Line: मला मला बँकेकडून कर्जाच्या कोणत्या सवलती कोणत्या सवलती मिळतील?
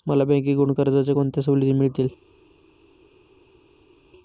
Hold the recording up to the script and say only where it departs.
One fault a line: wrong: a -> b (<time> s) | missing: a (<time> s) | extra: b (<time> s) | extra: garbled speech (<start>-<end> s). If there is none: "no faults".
missing: मला (0.2 s)
missing: कोणत्या सवलती (1.7 s)